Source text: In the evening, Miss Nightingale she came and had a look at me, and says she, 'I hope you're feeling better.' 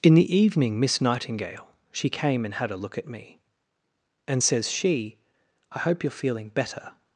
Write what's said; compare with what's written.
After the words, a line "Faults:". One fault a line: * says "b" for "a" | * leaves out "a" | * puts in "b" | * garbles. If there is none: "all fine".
In the evening, Miss Nightingale she came and had a look at me, and says she, 'I hope you're feeling better.'
Faults:
all fine